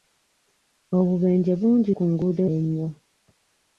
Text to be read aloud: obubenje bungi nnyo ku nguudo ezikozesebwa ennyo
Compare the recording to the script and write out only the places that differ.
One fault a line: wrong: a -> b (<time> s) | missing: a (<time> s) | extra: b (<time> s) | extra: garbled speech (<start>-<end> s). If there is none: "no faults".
missing: nnyo (1.9 s)
missing: ezikozesebwa (2.4 s)